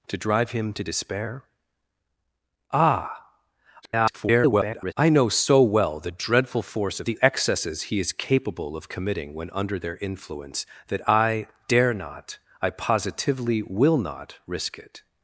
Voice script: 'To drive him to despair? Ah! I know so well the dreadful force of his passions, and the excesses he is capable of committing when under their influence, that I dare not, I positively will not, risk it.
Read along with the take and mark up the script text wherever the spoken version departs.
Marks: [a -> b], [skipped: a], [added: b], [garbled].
'To drive him to despair? Ah! [garbled] I know so well the dreadful force of [skipped: his passions, and] the excesses he is capable of committing when under their influence, that I dare not, I positively will not, risk it.